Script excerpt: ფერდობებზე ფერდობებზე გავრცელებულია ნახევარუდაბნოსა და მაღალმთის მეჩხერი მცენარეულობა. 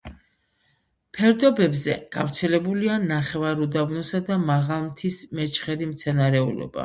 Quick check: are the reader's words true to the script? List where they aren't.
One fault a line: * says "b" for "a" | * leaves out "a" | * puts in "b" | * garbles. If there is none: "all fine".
* leaves out "ფერდობებზე"